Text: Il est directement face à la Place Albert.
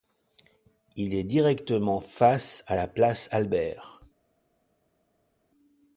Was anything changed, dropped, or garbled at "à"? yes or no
no